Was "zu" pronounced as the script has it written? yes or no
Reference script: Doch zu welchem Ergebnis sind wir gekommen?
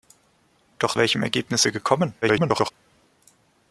no